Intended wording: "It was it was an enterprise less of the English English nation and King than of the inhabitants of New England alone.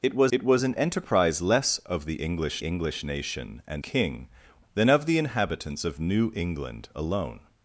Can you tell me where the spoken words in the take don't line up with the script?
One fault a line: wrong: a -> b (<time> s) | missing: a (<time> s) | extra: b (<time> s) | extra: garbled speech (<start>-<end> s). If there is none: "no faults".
no faults